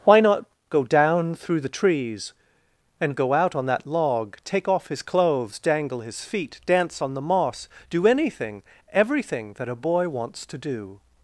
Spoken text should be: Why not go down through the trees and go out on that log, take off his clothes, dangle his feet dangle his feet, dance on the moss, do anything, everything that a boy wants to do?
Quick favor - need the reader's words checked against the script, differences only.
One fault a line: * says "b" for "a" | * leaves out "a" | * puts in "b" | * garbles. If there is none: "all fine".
* leaves out "dangle his feet"